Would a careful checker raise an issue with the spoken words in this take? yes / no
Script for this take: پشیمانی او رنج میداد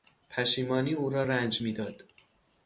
yes